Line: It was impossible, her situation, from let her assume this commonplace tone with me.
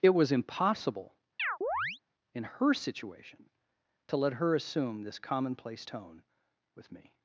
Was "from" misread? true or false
true